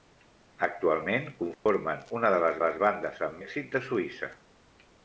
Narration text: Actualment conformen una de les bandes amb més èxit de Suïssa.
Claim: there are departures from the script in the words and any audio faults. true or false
true